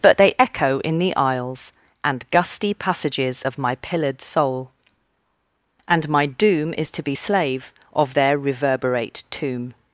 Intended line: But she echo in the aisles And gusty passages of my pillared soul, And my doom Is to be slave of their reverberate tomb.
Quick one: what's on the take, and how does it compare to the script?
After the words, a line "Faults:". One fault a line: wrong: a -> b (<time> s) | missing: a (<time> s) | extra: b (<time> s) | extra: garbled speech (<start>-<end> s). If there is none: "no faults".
But they echo in the aisles And gusty passages of my pillared soul, And my doom Is to be slave of their reverberate tomb.
Faults:
wrong: she -> they (0.2 s)